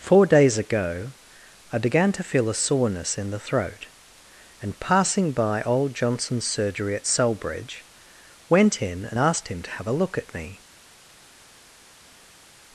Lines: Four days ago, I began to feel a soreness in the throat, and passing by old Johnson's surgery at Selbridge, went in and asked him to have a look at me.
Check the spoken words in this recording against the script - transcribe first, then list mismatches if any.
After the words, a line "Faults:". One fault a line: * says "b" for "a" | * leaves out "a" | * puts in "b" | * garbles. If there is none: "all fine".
Four days ago, I began to feel a soreness in the throat, and passing by old Johnson's surgery at Selbridge, went in and asked him to have a look at me.
Faults:
all fine